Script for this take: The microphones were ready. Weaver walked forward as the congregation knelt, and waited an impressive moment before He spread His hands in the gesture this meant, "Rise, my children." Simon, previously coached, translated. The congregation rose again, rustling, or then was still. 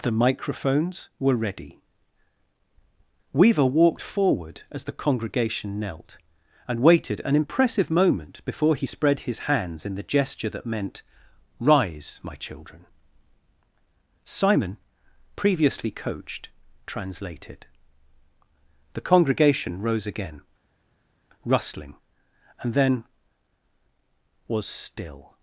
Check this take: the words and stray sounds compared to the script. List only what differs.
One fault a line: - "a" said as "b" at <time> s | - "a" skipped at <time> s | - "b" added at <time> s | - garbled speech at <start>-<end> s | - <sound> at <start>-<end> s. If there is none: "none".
- "this" said as "that" at 10.5 s
- "or" said as "and" at 22.6 s